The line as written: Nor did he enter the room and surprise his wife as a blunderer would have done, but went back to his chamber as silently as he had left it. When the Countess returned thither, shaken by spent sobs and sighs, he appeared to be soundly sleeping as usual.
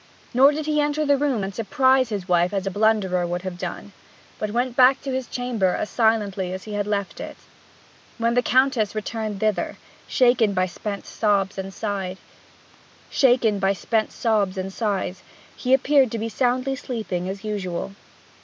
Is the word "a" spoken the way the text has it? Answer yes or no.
yes